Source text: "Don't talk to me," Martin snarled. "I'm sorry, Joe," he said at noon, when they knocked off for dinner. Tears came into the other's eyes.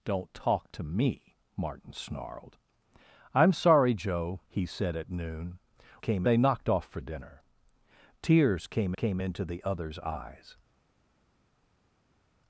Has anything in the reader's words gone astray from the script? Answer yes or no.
yes